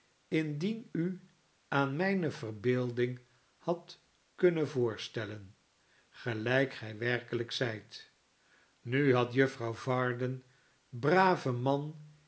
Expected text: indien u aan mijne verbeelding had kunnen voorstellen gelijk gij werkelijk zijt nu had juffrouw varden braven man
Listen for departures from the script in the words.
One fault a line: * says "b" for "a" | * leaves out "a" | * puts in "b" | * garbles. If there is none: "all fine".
all fine